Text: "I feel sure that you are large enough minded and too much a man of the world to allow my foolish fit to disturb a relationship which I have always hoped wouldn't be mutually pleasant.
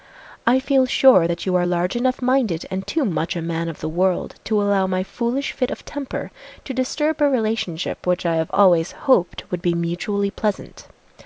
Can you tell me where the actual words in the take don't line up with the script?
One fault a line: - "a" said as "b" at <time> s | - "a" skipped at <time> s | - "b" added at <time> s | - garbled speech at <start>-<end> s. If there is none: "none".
- "of temper" added at 5.7 s
- "wouldn't" said as "would" at 9.5 s